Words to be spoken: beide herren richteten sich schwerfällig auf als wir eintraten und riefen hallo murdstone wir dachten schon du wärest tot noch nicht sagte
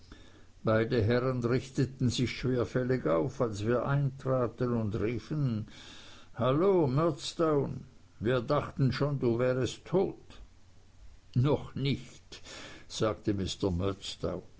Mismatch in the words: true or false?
false